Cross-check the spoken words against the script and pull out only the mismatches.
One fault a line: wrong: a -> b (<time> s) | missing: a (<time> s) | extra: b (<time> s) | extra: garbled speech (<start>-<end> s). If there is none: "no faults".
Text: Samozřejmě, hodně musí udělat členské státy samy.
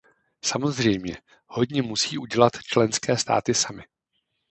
no faults